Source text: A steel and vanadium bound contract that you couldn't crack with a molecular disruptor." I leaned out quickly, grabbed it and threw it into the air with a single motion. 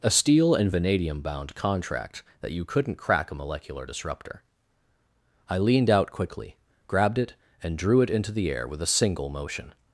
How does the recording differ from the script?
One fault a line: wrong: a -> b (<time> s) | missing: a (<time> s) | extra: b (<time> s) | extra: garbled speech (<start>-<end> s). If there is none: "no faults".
missing: with (3.3 s)
wrong: threw -> drew (7.8 s)